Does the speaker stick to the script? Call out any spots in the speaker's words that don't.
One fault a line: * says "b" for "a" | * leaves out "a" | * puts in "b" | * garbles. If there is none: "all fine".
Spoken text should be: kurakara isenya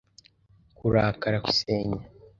all fine